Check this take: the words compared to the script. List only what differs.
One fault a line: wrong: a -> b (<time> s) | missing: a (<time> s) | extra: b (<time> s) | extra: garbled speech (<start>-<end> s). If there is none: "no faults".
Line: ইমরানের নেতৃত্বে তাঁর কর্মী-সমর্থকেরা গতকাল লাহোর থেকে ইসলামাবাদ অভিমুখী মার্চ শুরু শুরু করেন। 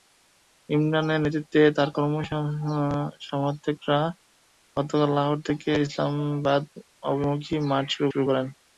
no faults